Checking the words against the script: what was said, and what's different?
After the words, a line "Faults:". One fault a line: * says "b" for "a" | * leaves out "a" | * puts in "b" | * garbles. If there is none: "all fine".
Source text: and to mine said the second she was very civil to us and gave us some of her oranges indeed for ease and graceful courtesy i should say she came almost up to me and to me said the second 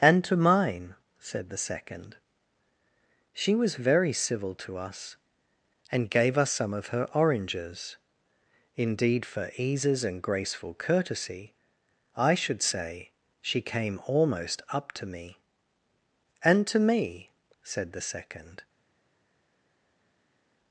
and to mine said the second she was very civil to us and gave us some of her oranges indeed for eases and graceful courtesy i should say she came almost up to me and to me said the second
Faults:
* says "eases" for "ease"